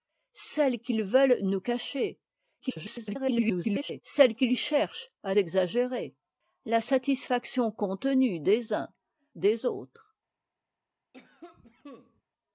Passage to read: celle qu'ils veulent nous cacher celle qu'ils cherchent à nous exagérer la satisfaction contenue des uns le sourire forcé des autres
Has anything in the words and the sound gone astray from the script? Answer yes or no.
yes